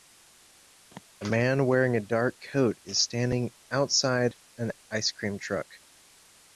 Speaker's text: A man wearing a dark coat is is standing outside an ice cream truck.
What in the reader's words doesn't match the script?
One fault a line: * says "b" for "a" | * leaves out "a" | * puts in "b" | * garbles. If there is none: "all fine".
* leaves out "is"